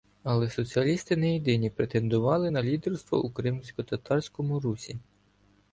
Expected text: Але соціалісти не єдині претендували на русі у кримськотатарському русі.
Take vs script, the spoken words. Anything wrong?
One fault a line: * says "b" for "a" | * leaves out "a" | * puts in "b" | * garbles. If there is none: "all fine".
* says "лідерство" for "русі"